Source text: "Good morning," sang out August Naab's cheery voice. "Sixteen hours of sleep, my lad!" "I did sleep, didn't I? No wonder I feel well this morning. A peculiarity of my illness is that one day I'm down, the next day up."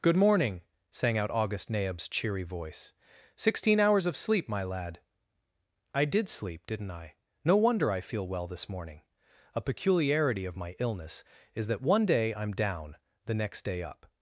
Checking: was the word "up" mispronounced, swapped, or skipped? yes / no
no